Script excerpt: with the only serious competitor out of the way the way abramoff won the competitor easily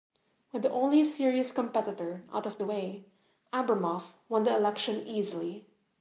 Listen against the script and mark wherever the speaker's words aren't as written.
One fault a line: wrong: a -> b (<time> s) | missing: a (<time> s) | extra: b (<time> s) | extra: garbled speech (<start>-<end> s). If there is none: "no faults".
missing: the way (3.0 s)
wrong: competitor -> election (4.6 s)